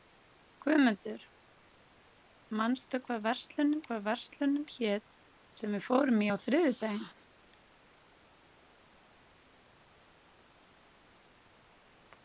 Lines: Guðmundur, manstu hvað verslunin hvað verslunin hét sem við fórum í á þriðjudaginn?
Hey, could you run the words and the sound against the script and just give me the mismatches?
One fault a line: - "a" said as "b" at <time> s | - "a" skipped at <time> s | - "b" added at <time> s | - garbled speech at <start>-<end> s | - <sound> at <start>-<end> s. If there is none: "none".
none